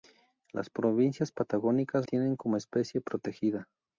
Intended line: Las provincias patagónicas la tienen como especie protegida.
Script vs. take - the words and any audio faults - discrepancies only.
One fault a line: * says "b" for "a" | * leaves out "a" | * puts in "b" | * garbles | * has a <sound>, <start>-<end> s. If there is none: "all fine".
* leaves out "la"